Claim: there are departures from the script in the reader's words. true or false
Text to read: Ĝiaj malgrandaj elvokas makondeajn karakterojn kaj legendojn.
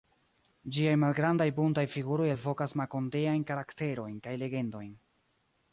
true